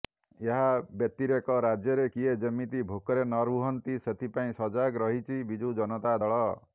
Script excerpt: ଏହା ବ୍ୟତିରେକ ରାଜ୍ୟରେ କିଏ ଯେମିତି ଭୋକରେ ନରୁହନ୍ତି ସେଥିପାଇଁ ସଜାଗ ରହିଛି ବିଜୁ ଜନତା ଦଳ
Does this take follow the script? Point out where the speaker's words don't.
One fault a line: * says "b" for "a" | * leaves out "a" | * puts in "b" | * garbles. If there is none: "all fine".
all fine